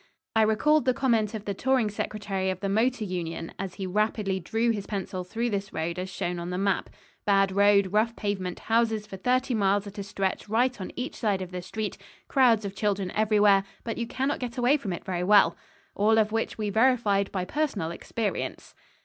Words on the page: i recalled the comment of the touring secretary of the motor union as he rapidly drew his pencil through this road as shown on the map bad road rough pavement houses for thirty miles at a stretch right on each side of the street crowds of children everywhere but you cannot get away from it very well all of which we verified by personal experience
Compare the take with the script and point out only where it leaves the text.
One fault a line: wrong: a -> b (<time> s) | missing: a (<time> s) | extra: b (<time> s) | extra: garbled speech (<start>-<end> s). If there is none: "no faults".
no faults